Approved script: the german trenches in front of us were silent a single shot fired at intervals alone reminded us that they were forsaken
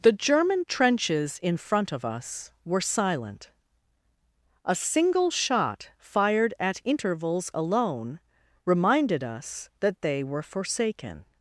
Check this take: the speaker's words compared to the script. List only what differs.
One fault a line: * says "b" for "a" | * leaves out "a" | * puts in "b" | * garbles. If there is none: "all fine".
all fine